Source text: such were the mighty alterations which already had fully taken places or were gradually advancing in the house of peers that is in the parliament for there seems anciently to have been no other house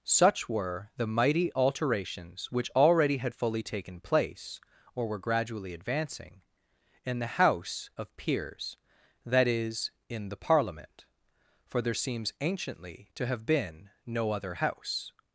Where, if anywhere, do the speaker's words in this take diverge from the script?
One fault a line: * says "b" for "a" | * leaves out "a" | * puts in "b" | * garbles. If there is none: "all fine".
* says "place" for "places"